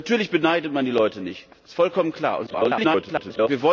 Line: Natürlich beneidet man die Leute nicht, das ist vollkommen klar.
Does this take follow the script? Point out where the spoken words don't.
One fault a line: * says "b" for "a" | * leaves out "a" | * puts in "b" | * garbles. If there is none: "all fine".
* garbles